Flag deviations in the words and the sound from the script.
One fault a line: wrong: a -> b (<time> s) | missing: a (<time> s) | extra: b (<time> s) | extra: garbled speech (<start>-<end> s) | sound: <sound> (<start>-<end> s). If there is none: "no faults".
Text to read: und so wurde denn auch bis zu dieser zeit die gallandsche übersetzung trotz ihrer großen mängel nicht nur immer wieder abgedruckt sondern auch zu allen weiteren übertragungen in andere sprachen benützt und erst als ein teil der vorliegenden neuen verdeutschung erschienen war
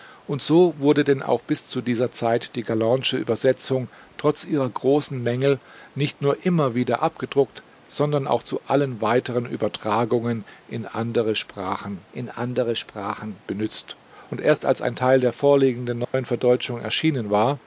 extra: in andere sprachen (12.1 s)
sound: dropout (16.0-16.1 s)